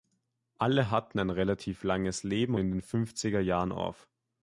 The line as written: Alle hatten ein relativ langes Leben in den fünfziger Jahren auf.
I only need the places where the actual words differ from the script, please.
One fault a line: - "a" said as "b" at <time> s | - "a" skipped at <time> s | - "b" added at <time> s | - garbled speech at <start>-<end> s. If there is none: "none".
none